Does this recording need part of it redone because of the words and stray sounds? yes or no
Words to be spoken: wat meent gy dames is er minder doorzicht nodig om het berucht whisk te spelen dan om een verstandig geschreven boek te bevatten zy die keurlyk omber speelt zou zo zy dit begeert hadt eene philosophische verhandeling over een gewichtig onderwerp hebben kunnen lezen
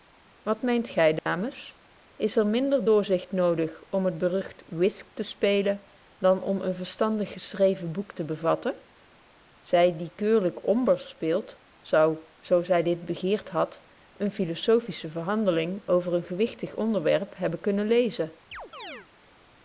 yes